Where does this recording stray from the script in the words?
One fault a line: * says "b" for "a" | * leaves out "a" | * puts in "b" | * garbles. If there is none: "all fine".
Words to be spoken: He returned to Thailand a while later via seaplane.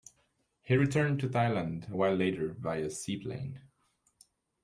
all fine